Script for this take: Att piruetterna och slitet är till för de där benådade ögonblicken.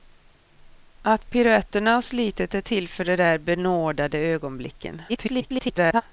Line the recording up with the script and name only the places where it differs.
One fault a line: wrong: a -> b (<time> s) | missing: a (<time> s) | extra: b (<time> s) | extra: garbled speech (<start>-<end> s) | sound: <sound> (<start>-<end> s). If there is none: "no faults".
extra: garbled speech (5.1-6.0 s)